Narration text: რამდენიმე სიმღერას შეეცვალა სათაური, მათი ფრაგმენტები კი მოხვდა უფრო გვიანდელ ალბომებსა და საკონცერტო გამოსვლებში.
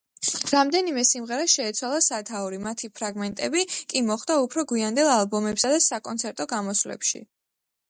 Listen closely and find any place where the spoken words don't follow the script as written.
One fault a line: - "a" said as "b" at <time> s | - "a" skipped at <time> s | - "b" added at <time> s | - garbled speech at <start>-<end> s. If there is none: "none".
none